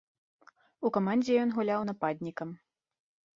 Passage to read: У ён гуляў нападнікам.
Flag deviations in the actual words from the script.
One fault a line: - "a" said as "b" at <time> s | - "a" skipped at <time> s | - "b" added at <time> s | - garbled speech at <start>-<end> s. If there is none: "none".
- "камандзе" added at 1.0 s